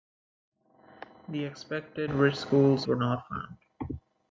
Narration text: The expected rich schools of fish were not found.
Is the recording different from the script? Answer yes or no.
yes